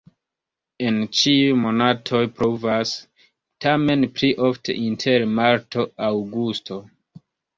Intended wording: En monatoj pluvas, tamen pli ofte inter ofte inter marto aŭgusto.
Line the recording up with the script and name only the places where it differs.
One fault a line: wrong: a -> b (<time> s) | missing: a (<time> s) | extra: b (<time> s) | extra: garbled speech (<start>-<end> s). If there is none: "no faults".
extra: ĉiuj (1.2 s)
missing: ofte inter (5.3 s)